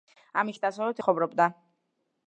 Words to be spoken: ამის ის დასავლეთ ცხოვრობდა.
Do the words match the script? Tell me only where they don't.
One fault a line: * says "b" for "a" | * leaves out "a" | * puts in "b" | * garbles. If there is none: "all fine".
all fine